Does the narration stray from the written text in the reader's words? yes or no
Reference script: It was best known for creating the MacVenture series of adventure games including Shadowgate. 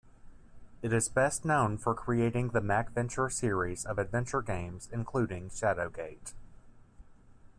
yes